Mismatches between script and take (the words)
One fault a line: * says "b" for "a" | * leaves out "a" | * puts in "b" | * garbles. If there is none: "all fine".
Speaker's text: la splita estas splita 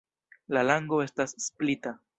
* says "lango" for "splita"